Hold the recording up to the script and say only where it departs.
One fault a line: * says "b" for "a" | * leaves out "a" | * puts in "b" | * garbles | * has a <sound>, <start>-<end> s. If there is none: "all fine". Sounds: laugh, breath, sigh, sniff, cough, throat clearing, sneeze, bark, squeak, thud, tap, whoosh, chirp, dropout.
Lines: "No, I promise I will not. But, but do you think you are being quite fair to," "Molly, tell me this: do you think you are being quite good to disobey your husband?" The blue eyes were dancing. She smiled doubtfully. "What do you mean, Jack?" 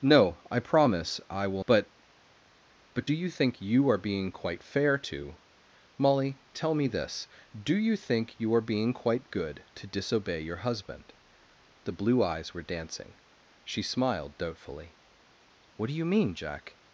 * leaves out "not"